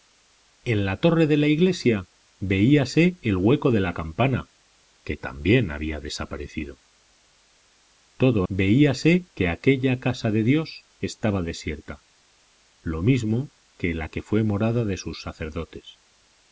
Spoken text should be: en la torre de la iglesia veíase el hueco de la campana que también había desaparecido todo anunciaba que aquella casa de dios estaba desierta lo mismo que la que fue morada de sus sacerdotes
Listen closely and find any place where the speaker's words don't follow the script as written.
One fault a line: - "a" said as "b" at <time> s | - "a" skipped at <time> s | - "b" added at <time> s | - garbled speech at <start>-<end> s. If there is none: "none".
- "anunciaba" said as "veíase" at 8.5 s